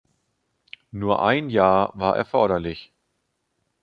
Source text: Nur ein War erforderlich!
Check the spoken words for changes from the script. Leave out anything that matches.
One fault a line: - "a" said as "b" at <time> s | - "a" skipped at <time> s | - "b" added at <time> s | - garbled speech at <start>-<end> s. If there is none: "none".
- "Jahr" added at 1.5 s